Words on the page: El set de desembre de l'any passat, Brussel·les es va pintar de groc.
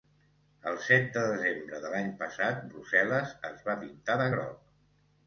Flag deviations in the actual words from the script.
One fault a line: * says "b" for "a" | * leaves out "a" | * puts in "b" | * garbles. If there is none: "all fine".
all fine